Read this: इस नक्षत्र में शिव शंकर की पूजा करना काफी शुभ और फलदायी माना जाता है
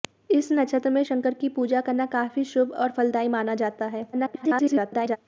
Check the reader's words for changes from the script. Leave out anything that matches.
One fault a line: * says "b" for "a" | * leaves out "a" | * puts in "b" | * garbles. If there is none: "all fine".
* leaves out "शिव"
* garbles